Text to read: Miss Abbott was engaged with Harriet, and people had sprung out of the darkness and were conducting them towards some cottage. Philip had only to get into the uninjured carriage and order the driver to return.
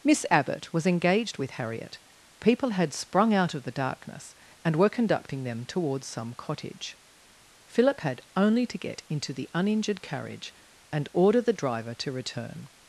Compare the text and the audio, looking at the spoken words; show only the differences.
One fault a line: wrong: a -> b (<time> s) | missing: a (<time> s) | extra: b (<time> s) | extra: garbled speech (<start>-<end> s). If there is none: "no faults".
missing: and (2.0 s)